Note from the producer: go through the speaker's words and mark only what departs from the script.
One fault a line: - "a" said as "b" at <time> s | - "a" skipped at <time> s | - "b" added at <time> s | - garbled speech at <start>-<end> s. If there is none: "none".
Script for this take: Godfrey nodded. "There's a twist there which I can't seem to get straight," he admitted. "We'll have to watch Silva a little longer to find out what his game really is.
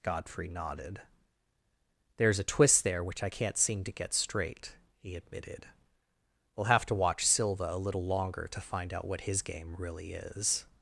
none